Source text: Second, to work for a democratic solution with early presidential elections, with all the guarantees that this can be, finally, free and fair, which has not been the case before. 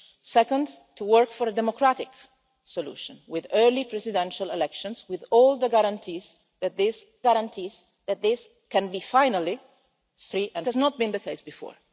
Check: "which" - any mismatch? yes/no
yes